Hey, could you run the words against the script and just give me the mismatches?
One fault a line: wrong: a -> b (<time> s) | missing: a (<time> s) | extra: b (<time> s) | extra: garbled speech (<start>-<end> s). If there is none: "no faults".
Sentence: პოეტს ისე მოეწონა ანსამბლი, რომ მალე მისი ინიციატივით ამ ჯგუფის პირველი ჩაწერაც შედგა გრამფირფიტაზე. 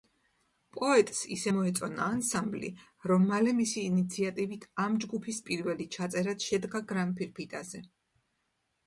no faults